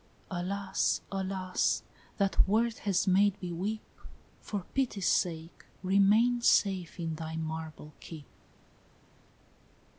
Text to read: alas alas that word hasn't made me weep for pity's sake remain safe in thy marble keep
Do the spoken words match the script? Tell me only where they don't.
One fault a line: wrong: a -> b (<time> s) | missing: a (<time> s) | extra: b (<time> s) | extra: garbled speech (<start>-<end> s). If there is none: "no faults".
wrong: hasn't -> has (2.9 s)